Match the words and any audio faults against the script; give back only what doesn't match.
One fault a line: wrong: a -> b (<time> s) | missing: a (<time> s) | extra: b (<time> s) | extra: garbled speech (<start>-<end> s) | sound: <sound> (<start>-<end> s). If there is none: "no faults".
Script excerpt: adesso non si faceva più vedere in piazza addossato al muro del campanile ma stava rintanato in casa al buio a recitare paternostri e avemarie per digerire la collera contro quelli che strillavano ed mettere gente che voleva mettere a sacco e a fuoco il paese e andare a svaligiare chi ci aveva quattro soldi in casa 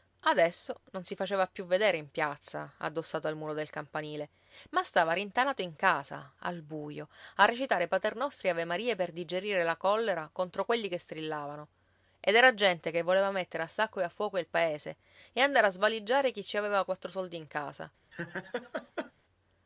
wrong: mettere -> era (12.3 s)
sound: laugh (18.1-19.1 s)